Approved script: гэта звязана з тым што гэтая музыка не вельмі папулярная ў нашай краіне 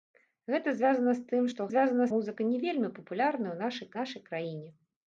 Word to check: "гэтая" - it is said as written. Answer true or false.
false